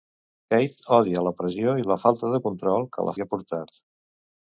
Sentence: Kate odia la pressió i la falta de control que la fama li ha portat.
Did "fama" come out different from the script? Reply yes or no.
yes